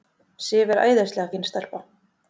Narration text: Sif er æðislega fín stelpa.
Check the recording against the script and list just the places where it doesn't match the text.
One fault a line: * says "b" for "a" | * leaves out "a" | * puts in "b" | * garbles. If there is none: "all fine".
all fine